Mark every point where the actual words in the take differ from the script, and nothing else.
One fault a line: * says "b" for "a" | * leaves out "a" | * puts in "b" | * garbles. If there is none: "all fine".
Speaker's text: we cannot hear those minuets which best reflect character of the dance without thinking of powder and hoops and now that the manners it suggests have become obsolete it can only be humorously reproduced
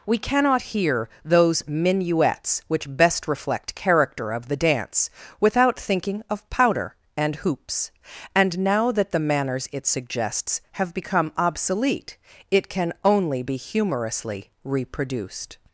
all fine